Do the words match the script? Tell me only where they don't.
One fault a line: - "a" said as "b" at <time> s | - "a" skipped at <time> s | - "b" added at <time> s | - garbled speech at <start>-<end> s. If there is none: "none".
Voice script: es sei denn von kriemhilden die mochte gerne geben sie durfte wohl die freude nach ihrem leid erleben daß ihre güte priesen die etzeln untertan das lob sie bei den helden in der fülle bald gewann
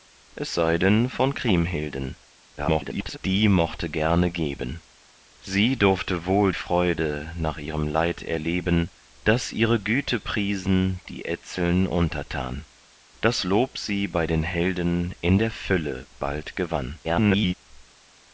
- garbled speech at 2.6-3.2 s
- "die" skipped at 6.5 s
- garbled speech at 17.0-17.5 s